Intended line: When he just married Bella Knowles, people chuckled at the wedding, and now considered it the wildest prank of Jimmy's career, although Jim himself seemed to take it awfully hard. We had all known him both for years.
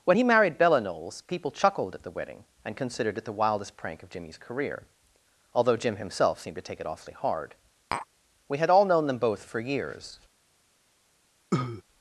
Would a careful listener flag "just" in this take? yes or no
yes